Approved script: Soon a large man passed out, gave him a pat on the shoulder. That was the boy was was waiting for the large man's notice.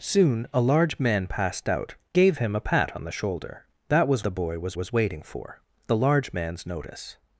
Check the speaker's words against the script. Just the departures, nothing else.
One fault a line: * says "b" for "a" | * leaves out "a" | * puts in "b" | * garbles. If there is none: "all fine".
all fine